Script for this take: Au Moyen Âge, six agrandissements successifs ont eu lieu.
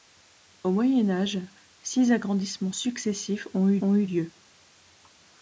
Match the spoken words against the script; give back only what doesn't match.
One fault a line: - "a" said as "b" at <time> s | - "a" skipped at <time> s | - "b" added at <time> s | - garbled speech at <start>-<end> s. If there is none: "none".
- "ont eu" added at 3.8 s